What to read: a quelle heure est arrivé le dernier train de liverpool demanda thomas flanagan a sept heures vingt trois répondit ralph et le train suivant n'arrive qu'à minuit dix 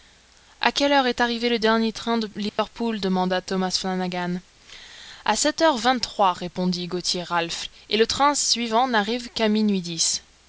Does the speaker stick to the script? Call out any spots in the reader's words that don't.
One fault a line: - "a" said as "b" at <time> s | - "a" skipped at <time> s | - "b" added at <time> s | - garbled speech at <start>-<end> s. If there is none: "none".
- "gauthier" added at 6.9 s